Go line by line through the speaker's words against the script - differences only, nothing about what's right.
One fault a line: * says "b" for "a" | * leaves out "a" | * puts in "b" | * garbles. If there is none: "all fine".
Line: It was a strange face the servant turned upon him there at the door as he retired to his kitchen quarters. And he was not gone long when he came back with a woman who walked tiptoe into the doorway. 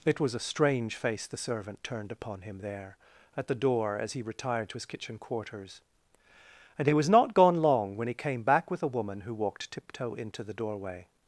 all fine